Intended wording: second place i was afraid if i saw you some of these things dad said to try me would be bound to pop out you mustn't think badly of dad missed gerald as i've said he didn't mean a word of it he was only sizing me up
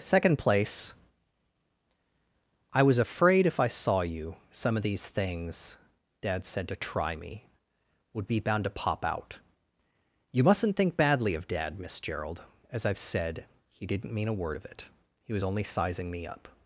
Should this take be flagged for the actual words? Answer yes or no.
yes